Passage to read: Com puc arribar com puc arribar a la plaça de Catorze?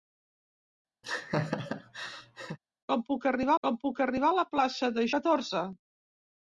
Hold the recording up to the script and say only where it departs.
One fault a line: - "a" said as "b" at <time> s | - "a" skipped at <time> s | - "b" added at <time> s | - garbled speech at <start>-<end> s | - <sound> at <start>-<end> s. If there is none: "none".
- laugh at 1.0-2.6 s